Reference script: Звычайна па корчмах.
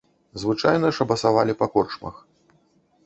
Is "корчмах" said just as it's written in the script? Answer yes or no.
yes